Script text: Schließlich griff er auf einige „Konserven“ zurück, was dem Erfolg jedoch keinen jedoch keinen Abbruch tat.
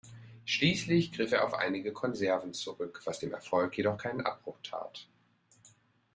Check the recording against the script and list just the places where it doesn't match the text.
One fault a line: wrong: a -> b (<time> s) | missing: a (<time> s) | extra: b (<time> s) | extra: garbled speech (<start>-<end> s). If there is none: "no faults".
missing: jedoch keinen (4.2 s)